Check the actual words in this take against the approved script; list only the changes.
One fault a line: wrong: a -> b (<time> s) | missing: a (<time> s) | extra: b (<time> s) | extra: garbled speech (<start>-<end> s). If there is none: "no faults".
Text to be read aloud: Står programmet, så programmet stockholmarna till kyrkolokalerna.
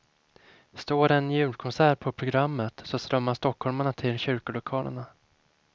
extra: en julkonsert på (1.1 s)
wrong: programmet -> strömmar (3.0 s)